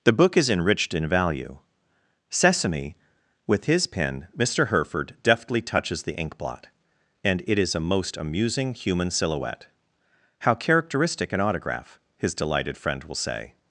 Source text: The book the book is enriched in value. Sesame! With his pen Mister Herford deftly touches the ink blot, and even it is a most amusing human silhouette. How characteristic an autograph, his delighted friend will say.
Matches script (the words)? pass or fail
fail